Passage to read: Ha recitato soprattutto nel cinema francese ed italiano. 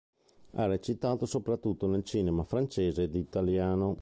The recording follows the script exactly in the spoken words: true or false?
true